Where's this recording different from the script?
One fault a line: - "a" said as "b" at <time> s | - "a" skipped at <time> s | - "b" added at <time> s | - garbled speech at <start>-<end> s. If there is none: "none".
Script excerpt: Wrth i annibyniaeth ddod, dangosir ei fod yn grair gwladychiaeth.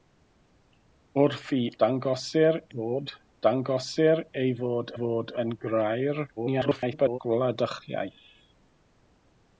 - "annibyniaeth" said as "dangosir" at 1.8 s
- "fod" added at 5.0 s
- garbled speech at 6.4-7.2 s